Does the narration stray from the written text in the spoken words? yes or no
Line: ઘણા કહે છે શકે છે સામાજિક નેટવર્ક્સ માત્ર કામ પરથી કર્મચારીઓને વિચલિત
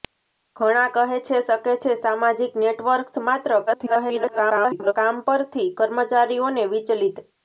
yes